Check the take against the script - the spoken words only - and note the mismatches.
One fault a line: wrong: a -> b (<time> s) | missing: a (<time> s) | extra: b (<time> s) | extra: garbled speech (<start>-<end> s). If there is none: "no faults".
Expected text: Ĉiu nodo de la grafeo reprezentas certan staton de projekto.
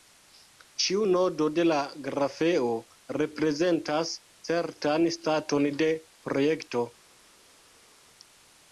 no faults